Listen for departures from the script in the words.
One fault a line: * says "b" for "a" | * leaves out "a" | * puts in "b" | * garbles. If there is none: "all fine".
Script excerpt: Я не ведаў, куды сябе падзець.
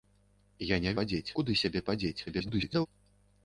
* says "падзець" for "ведаў"
* garbles